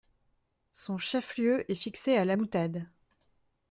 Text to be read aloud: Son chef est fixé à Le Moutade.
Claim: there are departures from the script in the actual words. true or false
true